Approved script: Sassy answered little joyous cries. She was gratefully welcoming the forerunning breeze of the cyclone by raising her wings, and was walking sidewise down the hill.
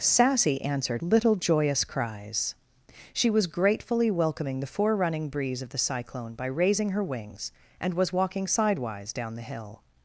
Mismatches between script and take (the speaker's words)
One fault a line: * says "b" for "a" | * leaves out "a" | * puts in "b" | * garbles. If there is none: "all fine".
all fine